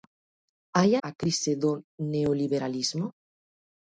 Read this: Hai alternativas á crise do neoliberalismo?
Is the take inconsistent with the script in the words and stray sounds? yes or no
yes